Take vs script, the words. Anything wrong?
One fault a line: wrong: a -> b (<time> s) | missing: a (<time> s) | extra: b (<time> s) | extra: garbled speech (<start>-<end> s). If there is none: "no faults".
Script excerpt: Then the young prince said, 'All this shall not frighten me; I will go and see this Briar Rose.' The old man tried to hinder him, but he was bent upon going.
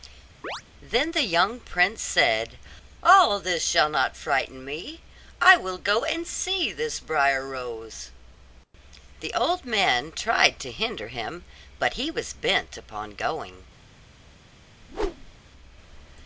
no faults